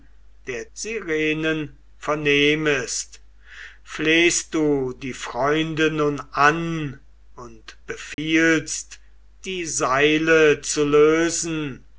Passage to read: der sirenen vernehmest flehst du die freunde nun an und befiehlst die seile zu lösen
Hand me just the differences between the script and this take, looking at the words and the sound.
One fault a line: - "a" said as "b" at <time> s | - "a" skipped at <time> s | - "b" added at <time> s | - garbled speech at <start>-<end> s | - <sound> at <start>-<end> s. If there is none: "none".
- dropout at 8.1-8.2 s